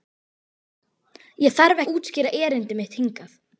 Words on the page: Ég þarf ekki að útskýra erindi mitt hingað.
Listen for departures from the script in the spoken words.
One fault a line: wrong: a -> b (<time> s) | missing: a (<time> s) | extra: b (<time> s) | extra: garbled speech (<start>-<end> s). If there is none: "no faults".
missing: ekki (1.8 s)